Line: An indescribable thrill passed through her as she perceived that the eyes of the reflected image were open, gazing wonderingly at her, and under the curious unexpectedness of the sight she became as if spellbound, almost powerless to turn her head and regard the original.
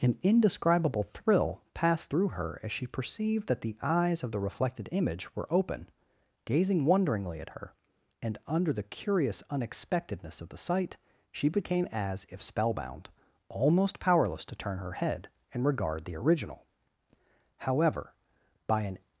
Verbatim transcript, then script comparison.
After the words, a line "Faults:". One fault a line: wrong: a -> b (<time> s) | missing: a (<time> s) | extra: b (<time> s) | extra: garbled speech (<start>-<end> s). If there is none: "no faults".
An indescribable thrill passed through her as she perceived that the eyes of the reflected image were open, gazing wonderingly at her, and under the curious unexpectedness of the sight she became as if spellbound, almost powerless to turn her head and regard the original. However, by an
Faults:
extra: However by an (17.6 s)